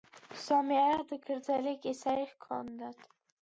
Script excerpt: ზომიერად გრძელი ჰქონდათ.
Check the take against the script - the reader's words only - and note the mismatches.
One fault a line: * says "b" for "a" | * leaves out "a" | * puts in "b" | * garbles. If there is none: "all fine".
* puts in "კისერი"